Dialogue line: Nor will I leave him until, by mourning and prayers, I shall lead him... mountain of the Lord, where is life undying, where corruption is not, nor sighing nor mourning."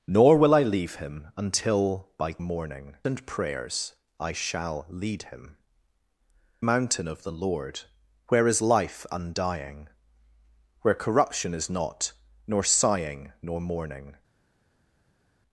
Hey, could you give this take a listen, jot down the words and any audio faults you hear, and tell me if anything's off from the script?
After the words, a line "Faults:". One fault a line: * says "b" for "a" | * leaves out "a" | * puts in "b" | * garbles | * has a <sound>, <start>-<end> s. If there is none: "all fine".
Nor will I leave him until, by mourning and prayers, I shall lead him... mountain of the Lord, where is life undying, where corruption is not, nor sighing nor mourning."
Faults:
all fine